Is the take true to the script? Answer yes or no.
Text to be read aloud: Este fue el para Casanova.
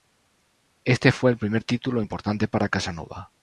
no